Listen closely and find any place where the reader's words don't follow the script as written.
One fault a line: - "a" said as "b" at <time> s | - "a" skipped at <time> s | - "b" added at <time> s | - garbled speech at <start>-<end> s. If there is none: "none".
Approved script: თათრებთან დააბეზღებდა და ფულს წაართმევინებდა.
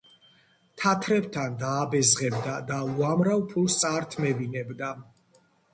- "უამრავ" added at 2.9 s